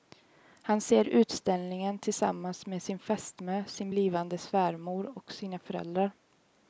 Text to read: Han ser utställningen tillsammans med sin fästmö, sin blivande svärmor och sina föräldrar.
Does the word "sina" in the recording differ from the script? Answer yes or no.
no